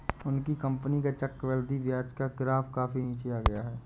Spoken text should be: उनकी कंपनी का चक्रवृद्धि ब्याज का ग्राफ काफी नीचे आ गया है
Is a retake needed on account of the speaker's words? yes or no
no